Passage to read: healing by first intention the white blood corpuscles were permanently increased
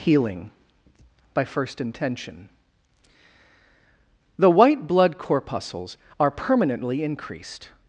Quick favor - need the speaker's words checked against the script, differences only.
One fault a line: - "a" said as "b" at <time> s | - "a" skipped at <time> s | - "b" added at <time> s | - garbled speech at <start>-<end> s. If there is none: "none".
- "were" said as "are" at 6.2 s